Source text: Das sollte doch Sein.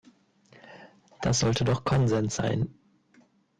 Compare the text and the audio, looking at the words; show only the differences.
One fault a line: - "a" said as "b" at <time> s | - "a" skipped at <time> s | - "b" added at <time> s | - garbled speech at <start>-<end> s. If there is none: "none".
- "Konsens" added at 1.8 s